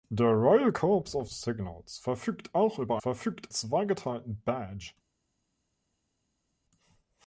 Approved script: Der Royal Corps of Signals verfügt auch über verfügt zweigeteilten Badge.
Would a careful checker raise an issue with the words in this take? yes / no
no